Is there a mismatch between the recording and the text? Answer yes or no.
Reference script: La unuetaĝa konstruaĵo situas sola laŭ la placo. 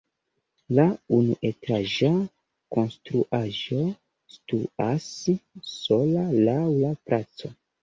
no